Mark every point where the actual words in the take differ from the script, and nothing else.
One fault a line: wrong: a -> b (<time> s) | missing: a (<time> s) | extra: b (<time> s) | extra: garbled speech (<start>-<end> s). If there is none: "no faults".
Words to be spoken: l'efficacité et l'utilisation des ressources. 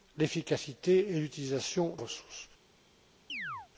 missing: des (1.9 s)